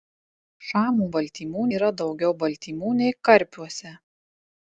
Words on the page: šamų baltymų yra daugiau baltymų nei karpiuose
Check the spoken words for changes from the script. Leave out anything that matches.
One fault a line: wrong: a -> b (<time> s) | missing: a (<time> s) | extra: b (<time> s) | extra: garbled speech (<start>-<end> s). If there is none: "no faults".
no faults